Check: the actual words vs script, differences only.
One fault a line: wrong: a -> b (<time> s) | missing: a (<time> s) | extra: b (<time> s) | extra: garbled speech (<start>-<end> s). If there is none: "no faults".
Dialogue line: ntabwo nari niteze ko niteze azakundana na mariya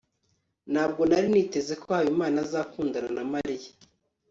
wrong: niteze -> habimana (2.0 s)